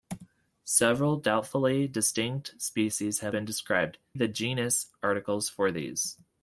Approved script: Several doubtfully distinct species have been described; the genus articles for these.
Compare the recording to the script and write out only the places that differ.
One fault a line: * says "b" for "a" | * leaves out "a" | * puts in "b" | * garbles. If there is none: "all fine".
all fine